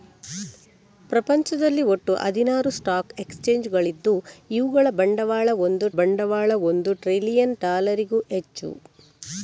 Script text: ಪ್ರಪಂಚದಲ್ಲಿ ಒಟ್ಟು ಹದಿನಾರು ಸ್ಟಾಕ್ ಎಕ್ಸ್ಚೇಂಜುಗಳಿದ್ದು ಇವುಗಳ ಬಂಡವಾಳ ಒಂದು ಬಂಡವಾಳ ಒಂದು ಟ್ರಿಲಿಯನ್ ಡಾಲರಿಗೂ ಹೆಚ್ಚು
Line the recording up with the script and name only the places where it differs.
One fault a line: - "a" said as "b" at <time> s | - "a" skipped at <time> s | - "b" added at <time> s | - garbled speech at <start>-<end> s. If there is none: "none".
none